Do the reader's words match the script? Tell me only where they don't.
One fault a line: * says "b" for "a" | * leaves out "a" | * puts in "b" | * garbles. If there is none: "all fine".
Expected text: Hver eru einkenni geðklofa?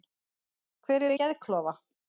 * leaves out "einkenni"